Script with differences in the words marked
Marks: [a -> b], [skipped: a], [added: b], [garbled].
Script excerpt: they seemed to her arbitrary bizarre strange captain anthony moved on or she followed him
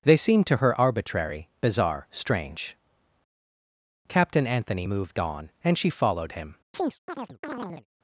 they seemed to her arbitrary bizarre strange captain anthony moved on [or -> and] she followed him